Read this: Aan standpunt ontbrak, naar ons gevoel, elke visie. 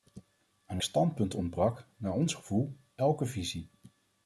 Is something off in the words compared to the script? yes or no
no